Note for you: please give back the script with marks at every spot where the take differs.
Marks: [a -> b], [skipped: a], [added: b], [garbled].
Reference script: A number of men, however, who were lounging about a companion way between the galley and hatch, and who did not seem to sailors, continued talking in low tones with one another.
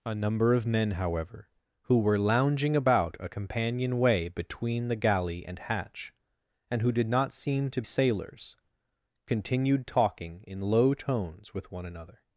A number of men, however, who were lounging about a companion way between the galley and hatch, and who did not seem to sailors, continued talking in low tones with one another.